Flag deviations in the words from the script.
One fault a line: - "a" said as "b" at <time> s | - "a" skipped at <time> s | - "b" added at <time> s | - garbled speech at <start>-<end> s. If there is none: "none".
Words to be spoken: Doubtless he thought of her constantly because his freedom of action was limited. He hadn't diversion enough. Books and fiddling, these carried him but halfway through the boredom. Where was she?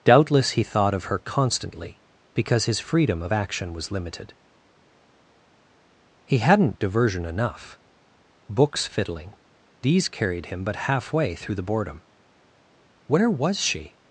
- "and" skipped at 8.9 s